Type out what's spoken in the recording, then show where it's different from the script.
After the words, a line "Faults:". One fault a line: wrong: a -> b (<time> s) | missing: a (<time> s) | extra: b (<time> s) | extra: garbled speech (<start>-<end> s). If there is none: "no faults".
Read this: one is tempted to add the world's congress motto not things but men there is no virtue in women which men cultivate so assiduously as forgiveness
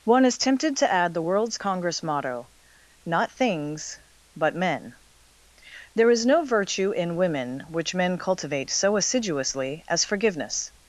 one is tempted to add the world's congress motto not things but men there is no virtue in women which men cultivate so assiduously as forgiveness
Faults:
no faults